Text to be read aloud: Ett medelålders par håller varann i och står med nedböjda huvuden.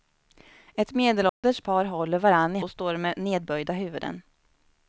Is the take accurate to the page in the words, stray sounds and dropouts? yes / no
no